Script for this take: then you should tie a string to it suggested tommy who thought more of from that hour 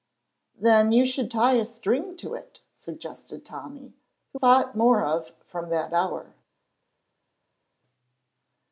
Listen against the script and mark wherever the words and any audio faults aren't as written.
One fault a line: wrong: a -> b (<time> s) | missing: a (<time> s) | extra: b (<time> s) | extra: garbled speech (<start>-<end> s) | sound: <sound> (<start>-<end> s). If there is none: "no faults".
no faults